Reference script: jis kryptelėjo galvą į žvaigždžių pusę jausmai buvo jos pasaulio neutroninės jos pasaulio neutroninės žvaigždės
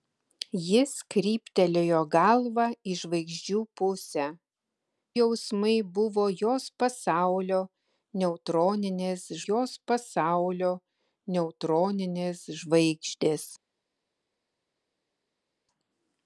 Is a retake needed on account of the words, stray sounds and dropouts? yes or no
no